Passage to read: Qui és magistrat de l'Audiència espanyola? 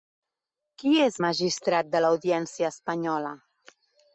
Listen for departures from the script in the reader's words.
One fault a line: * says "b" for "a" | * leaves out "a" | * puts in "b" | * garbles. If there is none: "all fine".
all fine